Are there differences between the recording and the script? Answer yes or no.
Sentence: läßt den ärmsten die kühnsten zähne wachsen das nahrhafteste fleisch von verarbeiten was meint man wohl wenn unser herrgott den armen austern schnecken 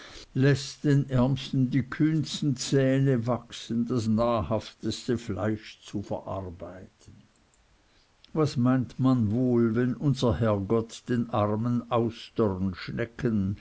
yes